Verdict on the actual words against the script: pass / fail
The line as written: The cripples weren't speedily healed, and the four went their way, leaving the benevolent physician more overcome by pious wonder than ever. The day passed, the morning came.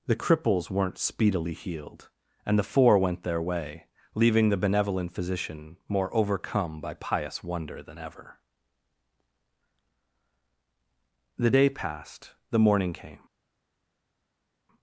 pass